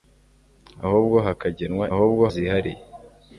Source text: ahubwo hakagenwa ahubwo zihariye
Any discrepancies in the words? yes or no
no